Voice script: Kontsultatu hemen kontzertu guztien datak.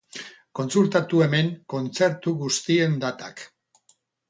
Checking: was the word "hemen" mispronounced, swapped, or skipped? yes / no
no